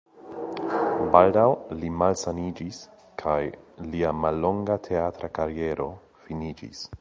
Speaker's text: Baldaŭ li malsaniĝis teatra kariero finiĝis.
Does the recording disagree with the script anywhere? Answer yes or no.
yes